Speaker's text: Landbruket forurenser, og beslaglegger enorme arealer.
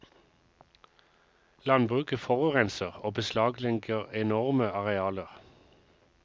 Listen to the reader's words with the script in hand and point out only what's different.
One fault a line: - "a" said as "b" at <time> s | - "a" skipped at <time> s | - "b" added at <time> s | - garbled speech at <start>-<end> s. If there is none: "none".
none